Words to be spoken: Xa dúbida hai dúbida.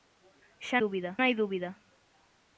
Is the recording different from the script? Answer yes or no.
no